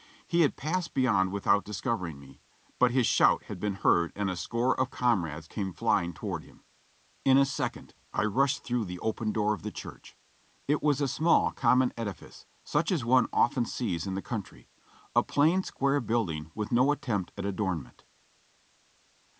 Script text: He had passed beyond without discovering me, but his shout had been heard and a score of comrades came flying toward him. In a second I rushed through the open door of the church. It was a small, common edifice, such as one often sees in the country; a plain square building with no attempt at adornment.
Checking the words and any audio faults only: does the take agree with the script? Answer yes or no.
yes